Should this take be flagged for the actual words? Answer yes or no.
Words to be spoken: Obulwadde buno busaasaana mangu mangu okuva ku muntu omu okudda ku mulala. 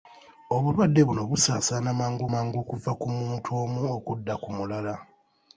no